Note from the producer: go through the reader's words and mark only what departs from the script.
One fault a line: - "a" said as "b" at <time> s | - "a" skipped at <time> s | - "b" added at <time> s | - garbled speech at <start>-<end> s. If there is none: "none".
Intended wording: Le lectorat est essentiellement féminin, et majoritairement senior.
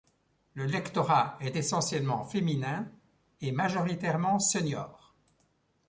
none